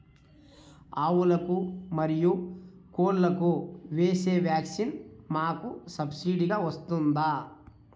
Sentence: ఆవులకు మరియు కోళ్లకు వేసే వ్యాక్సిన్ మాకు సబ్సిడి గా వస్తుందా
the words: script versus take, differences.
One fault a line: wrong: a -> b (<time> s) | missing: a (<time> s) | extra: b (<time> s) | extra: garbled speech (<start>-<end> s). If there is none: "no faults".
no faults